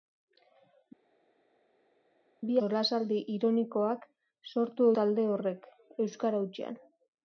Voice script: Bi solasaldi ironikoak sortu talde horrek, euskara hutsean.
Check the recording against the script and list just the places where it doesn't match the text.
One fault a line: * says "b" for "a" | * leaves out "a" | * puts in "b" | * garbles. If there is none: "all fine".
all fine